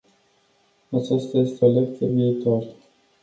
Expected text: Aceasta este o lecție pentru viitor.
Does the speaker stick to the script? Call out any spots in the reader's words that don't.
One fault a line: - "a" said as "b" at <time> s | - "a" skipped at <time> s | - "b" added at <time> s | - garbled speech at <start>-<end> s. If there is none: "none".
- "pentru" skipped at 2.1 s